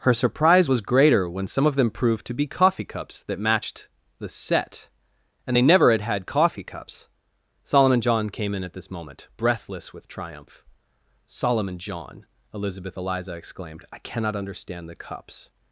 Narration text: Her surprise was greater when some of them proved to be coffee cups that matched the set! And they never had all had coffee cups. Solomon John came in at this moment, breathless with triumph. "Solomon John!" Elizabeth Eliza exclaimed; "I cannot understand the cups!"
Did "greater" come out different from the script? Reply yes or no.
no